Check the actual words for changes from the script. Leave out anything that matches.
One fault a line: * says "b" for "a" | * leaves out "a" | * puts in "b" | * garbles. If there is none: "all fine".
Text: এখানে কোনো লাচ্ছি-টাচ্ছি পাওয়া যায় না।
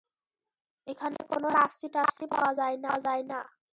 all fine